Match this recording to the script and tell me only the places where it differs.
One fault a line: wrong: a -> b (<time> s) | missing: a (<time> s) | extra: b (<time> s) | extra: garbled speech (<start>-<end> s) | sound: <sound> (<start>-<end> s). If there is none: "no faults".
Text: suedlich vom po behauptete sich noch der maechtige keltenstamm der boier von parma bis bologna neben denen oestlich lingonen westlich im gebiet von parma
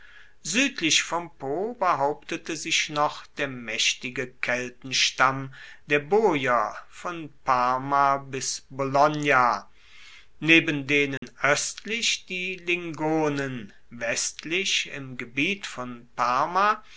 sound: dropout (11.2-11.2 s)
extra: die (12.3 s)